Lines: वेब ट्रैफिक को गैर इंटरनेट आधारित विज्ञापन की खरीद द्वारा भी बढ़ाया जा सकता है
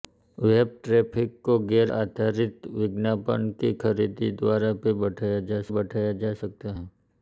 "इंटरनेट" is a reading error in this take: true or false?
true